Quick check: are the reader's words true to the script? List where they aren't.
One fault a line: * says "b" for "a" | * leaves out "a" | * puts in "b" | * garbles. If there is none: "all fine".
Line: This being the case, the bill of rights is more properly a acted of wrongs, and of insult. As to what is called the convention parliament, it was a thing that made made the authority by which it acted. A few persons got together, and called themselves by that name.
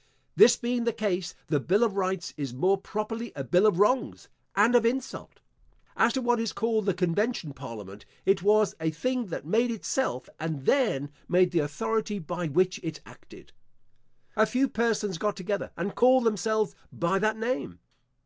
* says "bill" for "acted"
* puts in "itself and then"